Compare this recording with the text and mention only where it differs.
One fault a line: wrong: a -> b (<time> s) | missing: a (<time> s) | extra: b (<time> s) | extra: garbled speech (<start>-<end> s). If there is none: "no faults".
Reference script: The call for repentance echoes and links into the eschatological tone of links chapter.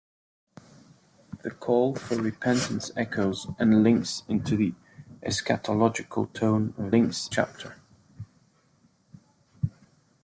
no faults